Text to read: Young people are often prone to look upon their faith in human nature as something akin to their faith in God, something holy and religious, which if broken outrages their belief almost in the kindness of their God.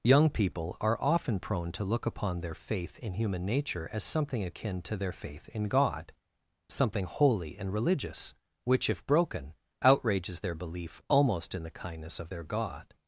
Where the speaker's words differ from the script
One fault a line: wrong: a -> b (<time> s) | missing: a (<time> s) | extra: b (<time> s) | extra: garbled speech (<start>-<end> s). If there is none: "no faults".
no faults